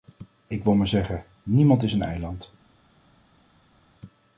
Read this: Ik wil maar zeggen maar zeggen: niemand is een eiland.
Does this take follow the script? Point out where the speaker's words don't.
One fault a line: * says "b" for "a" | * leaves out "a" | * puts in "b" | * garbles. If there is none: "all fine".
* leaves out "maar zeggen"